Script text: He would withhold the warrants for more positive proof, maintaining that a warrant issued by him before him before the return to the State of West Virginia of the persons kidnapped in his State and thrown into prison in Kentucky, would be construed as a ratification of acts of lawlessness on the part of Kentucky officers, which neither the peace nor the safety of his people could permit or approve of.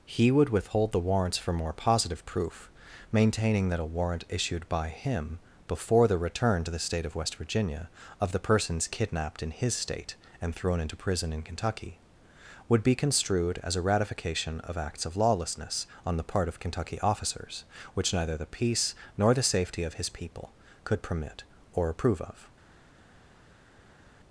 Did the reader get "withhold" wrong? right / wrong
right